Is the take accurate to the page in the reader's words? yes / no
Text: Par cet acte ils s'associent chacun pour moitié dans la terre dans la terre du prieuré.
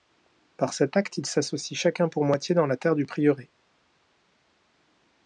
no